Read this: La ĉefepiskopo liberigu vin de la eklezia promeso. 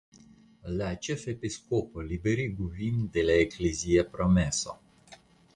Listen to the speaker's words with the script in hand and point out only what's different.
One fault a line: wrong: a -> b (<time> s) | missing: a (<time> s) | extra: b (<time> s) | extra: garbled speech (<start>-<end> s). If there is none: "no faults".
no faults